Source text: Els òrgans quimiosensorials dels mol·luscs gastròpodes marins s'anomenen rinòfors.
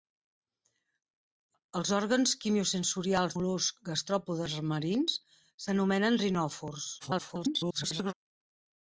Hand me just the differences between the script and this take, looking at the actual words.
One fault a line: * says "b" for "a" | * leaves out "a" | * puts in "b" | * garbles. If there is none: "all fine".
* leaves out "dels"
* garbles